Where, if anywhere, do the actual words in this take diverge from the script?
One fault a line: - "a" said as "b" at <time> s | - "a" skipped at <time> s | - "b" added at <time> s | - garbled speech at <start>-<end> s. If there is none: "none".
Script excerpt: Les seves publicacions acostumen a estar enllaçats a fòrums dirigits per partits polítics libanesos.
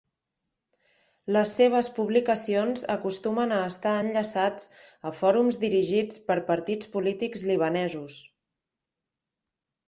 none